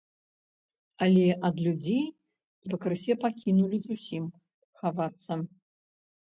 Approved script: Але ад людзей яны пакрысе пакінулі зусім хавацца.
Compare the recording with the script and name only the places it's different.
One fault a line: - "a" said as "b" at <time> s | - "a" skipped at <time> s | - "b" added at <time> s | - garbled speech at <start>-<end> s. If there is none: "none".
- "яны" skipped at 2.0 s